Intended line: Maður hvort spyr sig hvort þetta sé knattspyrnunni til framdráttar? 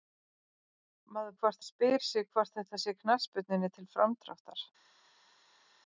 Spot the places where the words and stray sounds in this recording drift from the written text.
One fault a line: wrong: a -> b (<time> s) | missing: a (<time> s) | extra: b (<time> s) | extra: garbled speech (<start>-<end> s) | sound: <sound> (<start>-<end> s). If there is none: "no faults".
no faults